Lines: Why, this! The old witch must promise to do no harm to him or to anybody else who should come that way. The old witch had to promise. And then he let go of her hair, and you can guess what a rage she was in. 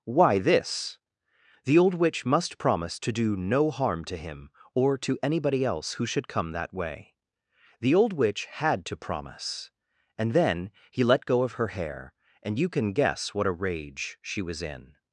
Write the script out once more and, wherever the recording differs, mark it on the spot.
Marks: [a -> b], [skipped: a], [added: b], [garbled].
Why, this! The old witch must promise to do no harm to him or to anybody else who should come that way. The old witch had to promise. And then he let go of her hair, and you can guess what a rage she was in.